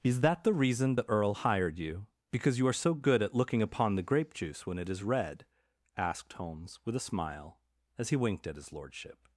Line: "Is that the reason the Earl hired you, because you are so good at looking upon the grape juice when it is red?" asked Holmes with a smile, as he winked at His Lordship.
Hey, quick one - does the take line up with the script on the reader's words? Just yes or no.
yes